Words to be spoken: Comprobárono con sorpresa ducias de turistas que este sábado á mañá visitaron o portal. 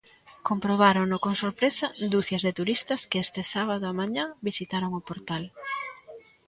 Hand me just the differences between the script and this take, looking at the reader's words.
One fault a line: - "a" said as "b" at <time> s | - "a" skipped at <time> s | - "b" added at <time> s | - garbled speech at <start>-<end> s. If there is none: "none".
none